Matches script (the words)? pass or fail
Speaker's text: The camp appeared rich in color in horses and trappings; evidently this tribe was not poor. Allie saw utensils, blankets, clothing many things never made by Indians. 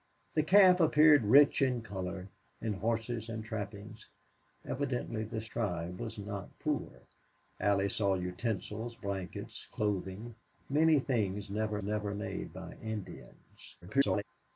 fail